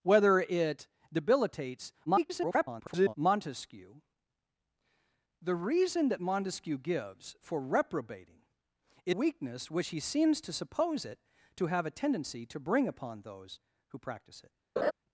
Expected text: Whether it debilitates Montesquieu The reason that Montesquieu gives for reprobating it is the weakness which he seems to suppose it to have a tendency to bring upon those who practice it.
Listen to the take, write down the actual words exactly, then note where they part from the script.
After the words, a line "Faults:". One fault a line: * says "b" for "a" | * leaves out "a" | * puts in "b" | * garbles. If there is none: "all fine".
Whether it debilitates [garbled] Montesquieu The reason that Montesquieu gives for reprobating it weakness which he seems to suppose it to have a tendency to bring upon those who practice it.
Faults:
* garbles
* leaves out "is the"